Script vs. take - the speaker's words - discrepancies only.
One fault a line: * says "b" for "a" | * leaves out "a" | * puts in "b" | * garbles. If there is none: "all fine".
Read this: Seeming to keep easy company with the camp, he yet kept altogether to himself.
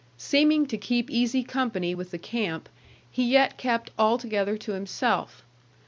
all fine